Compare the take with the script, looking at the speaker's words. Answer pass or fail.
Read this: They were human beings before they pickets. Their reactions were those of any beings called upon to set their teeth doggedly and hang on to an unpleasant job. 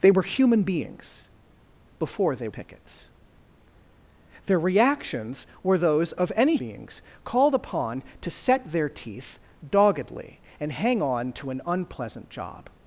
pass